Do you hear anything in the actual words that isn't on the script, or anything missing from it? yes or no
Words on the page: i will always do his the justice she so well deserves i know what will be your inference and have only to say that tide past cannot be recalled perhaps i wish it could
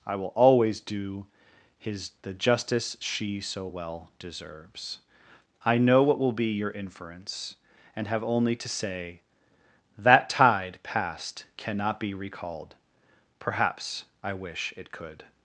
no